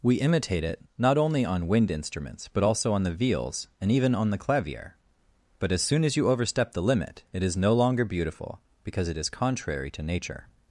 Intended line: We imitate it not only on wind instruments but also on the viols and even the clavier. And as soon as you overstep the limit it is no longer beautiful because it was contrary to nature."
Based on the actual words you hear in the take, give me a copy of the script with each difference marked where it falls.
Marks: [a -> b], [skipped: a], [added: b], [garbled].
We imitate it not only on wind instruments but also on the viols and even [added: on] the clavier. [And -> But] as soon as you overstep the limit it is no longer beautiful because it [was -> is] contrary to nature."